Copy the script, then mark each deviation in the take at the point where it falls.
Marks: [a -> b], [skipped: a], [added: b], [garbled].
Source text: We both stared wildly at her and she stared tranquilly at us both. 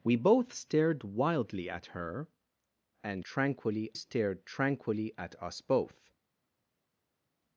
We both stared wildly at her and [she -> tranquilly] stared tranquilly at us both.